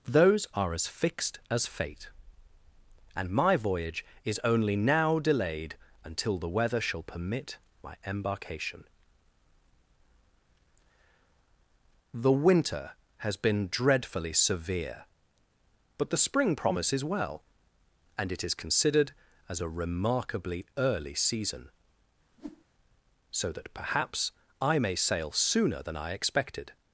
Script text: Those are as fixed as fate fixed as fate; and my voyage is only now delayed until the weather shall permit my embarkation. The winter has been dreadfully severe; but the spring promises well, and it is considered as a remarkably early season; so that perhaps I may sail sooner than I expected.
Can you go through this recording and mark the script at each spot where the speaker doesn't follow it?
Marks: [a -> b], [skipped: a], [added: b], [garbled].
Those are as fixed as fate [skipped: fixed as fate;] and my voyage is only now delayed until the weather shall permit my embarkation. The winter has been dreadfully severe; but the spring promises well, and it is considered as a remarkably early season; so that perhaps I may sail sooner than I expected.